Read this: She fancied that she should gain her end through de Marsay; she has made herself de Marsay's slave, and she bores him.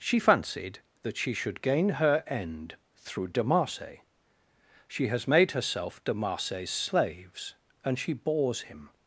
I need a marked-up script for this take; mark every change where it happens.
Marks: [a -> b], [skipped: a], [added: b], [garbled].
She fancied that she should gain her end through de Marsay; she has made herself de Marsay's [slave, -> slaves] and she bores him.